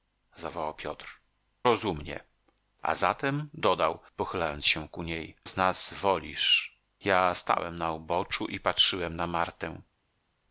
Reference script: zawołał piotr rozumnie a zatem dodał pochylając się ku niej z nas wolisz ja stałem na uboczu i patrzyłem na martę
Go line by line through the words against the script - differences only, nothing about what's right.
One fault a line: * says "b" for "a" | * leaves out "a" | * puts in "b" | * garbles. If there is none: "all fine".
all fine